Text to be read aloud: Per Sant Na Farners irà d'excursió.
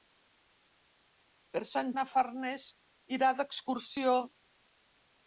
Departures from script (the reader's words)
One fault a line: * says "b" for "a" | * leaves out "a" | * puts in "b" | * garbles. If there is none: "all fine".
all fine